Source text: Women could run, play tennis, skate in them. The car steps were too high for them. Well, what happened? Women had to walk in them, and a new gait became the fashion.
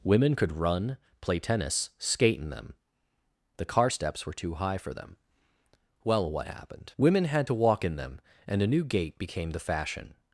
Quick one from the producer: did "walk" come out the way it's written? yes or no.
yes